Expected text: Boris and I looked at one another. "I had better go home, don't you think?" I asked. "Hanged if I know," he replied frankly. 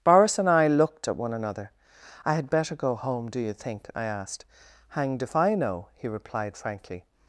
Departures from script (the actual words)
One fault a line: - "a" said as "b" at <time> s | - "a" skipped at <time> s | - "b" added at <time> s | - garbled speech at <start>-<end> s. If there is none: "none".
- "don't" said as "do" at 3.3 s